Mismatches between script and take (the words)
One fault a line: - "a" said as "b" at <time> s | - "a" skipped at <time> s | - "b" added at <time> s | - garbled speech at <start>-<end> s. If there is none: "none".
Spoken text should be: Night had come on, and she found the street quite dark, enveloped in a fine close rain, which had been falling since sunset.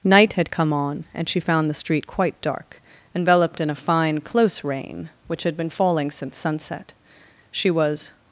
- "She was" added at 7.5 s